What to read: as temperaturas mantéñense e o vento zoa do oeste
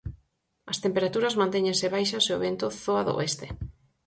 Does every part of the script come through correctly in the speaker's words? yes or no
no